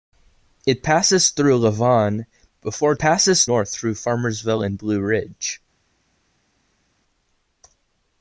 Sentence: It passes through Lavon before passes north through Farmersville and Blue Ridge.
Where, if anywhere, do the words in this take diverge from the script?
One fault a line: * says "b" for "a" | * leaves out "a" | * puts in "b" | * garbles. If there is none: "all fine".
all fine